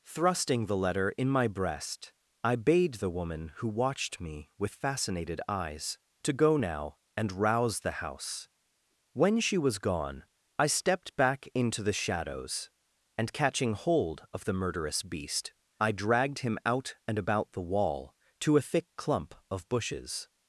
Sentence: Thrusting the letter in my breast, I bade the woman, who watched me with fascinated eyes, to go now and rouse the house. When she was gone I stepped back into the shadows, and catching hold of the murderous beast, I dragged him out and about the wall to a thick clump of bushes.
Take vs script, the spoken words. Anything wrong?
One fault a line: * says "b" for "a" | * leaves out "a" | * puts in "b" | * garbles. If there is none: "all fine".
all fine